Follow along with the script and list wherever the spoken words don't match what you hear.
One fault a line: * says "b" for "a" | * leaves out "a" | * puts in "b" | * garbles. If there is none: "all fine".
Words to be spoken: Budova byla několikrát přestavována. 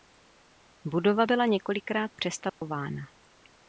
all fine